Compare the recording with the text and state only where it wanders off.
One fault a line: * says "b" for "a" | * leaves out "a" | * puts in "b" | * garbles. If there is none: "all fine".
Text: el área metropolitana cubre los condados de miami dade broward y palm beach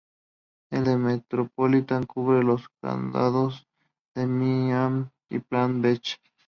* leaves out "área"
* leaves out "dade broward"